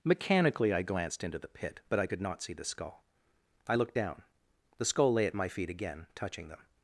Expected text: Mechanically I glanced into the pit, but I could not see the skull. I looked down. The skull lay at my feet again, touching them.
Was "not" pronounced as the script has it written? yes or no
yes